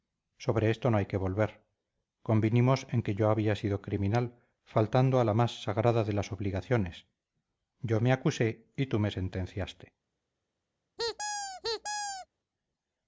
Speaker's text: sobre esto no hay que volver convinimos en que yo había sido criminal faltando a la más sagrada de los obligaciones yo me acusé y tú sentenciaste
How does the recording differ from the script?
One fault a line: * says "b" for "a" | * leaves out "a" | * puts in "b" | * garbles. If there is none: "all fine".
* says "las" for "los"
* puts in "me"